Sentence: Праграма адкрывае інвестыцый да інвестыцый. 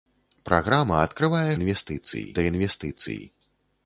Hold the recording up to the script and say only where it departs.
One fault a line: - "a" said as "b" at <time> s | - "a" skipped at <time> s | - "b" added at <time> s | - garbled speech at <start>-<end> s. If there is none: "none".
none